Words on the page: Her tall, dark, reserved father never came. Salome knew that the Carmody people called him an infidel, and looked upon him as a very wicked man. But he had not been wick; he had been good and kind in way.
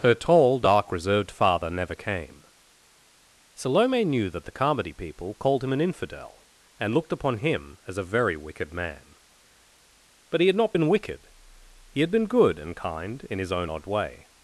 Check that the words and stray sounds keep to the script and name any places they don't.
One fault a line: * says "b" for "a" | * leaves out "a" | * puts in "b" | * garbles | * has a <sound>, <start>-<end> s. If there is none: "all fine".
* says "wicked" for "wick"
* puts in "his own odd"